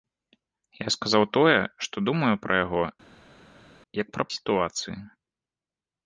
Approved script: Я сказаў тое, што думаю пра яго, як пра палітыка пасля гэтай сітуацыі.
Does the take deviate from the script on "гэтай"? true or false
true